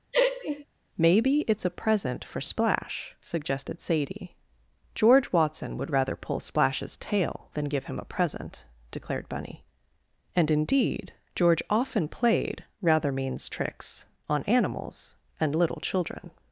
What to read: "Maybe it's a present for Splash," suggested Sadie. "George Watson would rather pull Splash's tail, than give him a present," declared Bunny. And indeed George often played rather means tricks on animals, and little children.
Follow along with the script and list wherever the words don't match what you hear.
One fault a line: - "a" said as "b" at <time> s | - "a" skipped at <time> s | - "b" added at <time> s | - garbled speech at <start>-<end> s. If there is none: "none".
none